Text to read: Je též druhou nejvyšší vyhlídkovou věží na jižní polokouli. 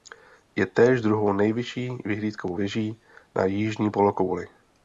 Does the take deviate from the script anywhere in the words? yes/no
no